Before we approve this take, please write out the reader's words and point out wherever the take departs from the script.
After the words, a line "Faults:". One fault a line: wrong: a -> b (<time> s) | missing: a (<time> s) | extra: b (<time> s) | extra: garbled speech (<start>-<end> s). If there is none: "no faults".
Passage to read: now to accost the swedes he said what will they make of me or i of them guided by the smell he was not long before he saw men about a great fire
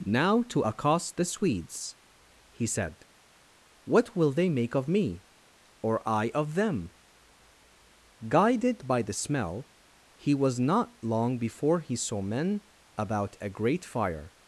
now to accost the swedes he said what will they make of me or i of them guided by the smell he was not long before he saw men about a great fire
Faults:
no faults